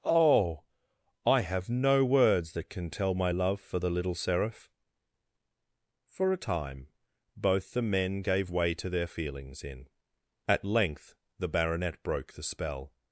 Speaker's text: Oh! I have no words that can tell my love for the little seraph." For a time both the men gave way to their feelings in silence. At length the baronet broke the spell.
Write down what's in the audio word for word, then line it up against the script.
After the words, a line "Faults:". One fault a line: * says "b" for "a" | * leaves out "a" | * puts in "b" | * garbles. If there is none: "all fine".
Oh! I have no words that can tell my love for the little seraph." For a time both the men gave way to their feelings in. At length the baronet broke the spell.
Faults:
* leaves out "silence"